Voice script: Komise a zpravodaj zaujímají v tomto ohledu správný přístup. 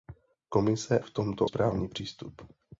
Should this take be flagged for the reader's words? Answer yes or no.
yes